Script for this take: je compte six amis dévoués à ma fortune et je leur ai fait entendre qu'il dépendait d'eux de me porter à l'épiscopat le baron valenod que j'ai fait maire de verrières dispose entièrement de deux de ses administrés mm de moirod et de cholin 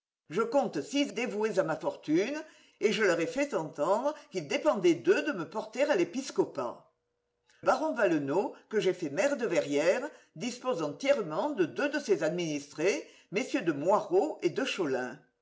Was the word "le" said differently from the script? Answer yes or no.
yes